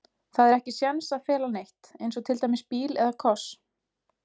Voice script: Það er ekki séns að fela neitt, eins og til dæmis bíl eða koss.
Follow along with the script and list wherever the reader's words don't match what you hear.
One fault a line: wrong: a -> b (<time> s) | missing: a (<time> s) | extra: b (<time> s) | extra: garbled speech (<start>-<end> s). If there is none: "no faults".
no faults